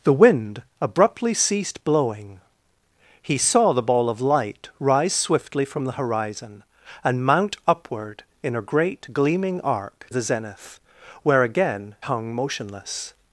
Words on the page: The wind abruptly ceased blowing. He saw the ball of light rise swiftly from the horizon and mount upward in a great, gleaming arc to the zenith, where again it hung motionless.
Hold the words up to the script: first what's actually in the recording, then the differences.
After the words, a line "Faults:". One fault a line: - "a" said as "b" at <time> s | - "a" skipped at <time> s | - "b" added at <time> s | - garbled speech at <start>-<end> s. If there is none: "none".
The wind abruptly ceased blowing. He saw the ball of light rise swiftly from the horizon and mount upward in a great, gleaming arc the zenith, where again hung motionless.
Faults:
- "to" skipped at 10.1 s
- "it" skipped at 11.9 s